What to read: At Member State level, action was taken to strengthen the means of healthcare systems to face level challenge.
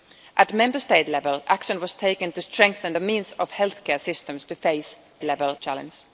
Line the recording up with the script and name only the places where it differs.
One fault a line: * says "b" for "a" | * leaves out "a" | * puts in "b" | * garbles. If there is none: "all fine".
all fine